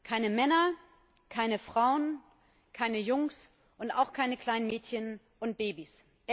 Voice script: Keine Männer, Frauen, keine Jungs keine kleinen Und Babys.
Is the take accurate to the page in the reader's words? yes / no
no